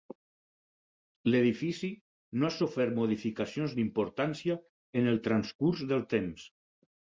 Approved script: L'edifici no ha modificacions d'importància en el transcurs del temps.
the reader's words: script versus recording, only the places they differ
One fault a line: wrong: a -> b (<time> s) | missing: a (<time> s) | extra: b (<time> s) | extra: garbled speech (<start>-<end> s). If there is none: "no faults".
extra: sofert (2.5 s)